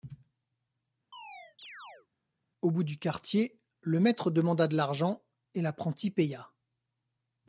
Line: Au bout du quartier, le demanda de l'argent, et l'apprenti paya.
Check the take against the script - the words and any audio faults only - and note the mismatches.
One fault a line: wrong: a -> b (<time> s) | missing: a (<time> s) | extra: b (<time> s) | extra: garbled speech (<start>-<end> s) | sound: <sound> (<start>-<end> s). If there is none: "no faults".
sound: chirp (1.1-2.1 s)
extra: maître (4.0 s)